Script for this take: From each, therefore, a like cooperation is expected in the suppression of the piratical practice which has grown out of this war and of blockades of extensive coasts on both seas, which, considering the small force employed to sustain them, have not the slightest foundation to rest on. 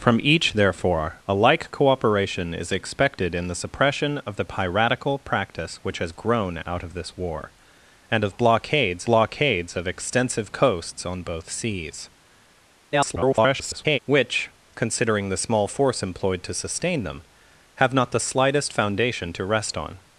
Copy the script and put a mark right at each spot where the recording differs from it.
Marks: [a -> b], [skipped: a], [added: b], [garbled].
From each, therefore, a like cooperation is expected in the suppression of the piratical practice which has grown out of this war and of blockades [added: blockades] of extensive coasts on both seas, [garbled] which, considering the small force employed to sustain them, have not the slightest foundation to rest on.